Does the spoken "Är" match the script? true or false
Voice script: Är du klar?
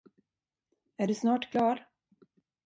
true